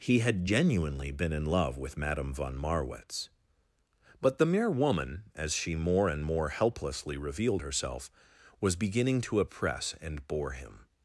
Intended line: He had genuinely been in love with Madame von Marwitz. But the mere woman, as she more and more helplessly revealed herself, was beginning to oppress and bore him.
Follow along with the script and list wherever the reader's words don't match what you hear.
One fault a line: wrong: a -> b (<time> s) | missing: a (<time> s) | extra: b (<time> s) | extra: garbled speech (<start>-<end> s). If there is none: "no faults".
no faults